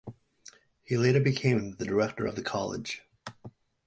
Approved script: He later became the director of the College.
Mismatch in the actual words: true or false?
false